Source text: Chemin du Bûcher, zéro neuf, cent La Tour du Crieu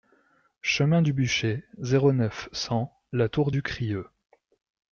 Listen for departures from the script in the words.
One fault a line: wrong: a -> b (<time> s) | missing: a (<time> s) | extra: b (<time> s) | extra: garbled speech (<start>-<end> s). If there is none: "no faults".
no faults